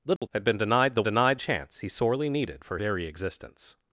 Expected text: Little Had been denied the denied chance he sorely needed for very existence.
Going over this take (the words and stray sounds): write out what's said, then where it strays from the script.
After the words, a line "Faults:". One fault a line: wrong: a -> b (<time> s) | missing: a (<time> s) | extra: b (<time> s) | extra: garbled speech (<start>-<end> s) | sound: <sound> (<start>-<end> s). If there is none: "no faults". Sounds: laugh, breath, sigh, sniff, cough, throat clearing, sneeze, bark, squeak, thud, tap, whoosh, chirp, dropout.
Little Had been denied the denied chance he sorely needed for very existence.
Faults:
sound: dropout (0.2-0.2 s)